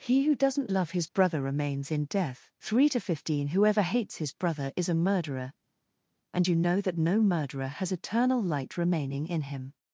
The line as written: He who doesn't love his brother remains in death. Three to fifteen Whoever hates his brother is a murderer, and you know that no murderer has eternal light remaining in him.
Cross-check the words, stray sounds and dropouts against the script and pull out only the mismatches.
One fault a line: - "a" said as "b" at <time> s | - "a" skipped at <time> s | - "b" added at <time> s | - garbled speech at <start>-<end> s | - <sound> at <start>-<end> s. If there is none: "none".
none